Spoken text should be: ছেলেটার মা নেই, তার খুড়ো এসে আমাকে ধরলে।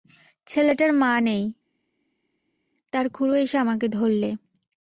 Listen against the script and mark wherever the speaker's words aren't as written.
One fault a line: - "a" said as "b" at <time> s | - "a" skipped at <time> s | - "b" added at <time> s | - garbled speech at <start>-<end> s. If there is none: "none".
none